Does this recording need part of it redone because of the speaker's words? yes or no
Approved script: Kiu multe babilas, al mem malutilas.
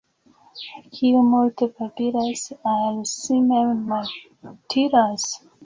yes